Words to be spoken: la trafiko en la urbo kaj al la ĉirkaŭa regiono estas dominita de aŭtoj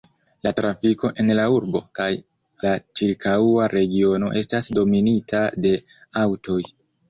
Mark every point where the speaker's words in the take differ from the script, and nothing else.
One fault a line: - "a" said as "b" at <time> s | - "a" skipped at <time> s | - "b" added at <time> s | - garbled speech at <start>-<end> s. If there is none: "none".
- "al" skipped at 2.1 s